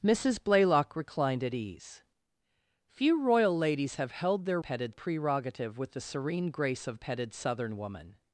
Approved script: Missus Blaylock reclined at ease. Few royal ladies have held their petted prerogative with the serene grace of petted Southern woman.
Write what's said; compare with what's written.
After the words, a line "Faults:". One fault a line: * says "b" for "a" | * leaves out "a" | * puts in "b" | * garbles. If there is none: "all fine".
Missus Blaylock reclined at ease. Few royal ladies have held their petted prerogative with the serene grace of petted Southern woman.
Faults:
all fine